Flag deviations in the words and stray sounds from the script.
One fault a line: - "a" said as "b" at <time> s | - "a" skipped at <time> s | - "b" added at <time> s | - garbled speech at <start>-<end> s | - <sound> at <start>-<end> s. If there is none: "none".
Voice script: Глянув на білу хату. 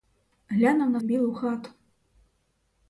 none